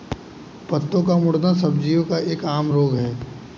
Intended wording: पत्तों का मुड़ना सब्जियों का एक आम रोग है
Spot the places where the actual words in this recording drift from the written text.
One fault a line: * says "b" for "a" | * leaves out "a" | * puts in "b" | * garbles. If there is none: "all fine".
all fine